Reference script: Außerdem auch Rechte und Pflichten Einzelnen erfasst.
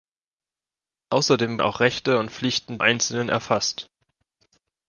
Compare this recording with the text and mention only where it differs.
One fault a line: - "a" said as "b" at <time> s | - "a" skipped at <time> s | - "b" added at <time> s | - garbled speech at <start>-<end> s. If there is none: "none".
none